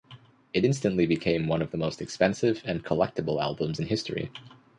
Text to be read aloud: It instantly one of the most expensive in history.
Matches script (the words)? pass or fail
fail